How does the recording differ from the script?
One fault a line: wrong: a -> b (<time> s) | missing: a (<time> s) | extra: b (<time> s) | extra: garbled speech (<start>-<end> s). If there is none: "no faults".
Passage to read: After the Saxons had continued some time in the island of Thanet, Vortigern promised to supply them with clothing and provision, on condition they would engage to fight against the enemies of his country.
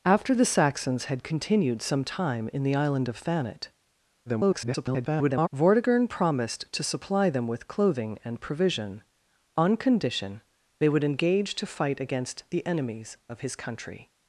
extra: garbled speech (4.3-5.5 s)